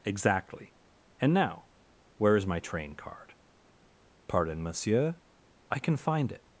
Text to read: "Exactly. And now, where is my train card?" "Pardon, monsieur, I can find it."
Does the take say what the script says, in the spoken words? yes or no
yes